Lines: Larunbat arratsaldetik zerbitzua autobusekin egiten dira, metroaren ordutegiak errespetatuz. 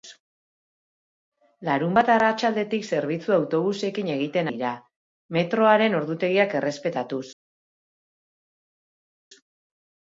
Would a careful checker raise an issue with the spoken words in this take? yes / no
no